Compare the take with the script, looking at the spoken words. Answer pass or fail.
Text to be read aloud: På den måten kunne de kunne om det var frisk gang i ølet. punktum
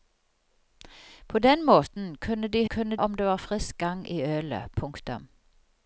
pass